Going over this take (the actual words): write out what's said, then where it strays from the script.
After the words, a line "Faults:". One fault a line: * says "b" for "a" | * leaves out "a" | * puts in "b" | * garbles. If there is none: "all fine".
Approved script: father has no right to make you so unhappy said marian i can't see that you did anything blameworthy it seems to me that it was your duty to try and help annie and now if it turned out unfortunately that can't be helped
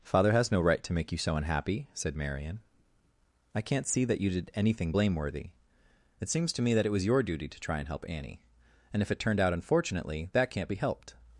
father has no right to make you so unhappy said marian i can't see that you did anything blameworthy it seems to me that it was your duty to try and help annie and if it turned out unfortunately that can't be helped
Faults:
* leaves out "now"